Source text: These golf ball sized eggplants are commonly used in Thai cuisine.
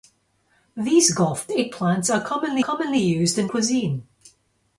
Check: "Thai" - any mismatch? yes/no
yes